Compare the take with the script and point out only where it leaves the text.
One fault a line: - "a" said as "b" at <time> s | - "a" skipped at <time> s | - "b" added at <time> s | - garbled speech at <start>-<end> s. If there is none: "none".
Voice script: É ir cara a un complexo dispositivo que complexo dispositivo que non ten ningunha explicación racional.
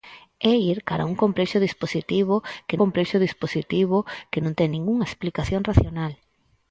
none